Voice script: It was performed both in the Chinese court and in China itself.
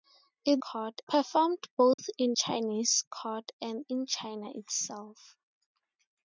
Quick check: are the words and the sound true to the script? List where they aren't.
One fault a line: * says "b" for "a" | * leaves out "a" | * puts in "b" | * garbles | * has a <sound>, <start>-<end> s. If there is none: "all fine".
* says "court" for "was"
* has a dropout, 1.9-2.0 s
* leaves out "the"